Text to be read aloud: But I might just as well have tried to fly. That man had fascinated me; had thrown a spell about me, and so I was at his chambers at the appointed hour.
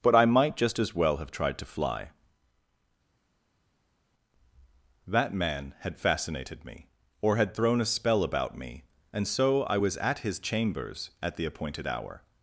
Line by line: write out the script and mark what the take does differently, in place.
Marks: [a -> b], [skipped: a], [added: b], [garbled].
But I might just as well have tried to fly. That man had fascinated me; [added: or] had thrown a spell about me, and so I was at his chambers at the appointed hour.